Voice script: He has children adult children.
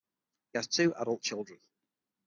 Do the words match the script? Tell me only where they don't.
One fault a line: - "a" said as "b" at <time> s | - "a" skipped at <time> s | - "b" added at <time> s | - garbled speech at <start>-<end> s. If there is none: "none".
- "children" said as "two" at 0.7 s